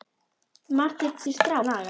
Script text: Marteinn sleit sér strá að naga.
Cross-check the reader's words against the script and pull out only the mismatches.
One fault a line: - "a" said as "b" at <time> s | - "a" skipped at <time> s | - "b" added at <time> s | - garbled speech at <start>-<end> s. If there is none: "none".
- "sleit" skipped at 1.2 s
- "að" skipped at 1.6 s